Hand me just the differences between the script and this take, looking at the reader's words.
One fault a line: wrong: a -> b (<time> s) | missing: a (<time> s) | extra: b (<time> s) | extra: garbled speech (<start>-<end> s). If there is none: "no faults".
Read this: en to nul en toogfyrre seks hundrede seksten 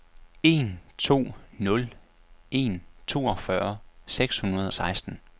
no faults